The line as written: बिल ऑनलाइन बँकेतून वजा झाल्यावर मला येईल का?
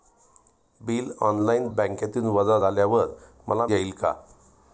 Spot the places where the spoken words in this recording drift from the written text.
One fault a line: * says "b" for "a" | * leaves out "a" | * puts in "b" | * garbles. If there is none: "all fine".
all fine